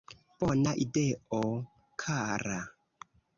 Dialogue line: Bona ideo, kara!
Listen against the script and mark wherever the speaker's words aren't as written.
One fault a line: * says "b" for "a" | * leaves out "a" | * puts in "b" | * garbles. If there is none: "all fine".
all fine